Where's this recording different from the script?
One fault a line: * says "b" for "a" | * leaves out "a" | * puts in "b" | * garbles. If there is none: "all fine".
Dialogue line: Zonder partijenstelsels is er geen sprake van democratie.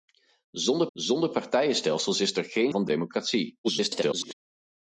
* puts in "zonder"
* leaves out "sprake"
* garbles